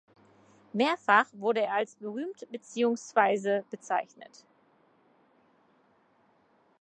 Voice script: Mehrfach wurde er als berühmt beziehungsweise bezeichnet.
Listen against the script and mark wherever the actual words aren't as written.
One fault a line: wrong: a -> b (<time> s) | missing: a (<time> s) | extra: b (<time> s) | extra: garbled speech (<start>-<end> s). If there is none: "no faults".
no faults